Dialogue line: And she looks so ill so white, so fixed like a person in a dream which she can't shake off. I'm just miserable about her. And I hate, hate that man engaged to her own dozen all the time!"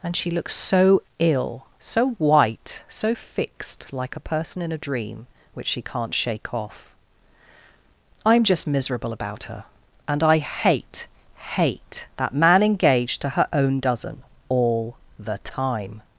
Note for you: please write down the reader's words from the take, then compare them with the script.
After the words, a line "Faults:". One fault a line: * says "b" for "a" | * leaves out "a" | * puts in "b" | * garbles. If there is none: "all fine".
And she looks so ill so white, so fixed like a person in a dream which she can't shake off. I'm just miserable about her. And I hate, hate that man engaged to her own dozen all the time!"
Faults:
all fine